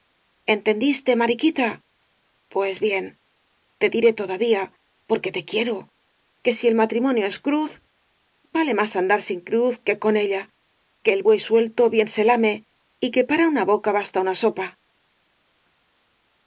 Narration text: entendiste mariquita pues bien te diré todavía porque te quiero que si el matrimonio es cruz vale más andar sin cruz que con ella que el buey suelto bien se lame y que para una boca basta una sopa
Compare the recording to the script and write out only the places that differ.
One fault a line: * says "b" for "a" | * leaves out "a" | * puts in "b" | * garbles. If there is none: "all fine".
all fine